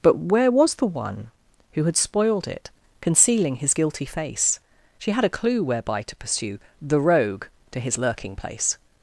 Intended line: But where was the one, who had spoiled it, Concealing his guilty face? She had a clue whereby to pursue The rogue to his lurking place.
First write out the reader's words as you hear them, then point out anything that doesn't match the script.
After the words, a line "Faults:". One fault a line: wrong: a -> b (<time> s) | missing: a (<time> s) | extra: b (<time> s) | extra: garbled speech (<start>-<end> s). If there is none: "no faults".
But where was the one, who had spoiled it, Concealing his guilty face? She had a clue whereby to pursue The rogue to his lurking place.
Faults:
no faults